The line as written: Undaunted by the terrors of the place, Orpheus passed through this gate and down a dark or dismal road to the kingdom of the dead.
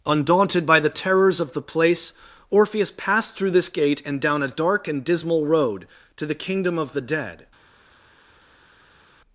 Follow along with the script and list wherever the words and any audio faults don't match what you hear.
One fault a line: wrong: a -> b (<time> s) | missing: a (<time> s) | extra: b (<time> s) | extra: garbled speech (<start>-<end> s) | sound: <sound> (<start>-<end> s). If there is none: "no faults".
wrong: or -> and (4.9 s)